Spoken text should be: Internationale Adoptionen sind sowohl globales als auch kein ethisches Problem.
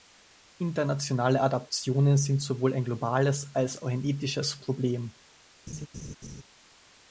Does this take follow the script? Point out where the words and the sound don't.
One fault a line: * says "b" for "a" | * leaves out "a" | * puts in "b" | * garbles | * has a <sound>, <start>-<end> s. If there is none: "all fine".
* puts in "ein"
* says "ein" for "kein"
* has a laugh, 5.7-6.4 s